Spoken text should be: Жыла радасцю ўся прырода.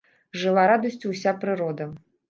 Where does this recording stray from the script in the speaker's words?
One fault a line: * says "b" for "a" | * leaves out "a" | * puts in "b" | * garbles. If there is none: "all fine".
all fine